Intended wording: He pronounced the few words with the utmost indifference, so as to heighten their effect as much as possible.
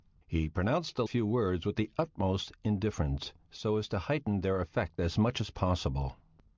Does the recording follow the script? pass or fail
pass